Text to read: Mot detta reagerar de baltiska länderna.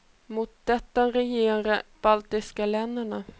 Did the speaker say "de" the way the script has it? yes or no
no